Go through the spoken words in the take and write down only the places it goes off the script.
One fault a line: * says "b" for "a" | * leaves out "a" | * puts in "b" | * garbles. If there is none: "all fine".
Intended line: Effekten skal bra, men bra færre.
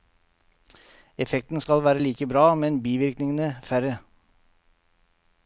* puts in "være like"
* says "bivirkningene" for "bra"